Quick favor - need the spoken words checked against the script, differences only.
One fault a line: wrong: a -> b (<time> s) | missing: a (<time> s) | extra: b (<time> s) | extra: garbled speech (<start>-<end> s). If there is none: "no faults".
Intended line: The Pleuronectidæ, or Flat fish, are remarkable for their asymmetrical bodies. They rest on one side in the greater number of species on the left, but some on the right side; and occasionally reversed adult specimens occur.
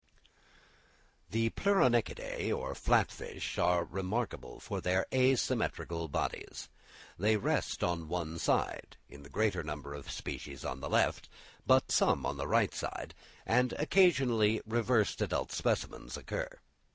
no faults